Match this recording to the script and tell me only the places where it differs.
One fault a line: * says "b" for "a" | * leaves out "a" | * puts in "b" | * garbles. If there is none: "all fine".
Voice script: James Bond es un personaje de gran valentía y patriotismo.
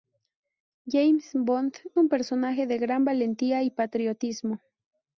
* leaves out "es"